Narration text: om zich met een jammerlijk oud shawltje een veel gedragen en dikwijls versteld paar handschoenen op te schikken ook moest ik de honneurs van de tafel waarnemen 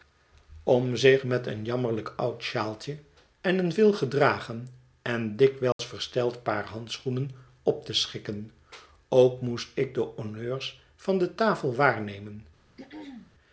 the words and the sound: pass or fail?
fail